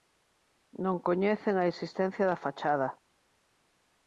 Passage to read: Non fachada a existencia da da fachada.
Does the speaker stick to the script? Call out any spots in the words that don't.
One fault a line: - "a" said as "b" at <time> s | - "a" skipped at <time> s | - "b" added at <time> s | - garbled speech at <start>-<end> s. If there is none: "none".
- "fachada" said as "coñecen" at 1.1 s
- "da" skipped at 2.4 s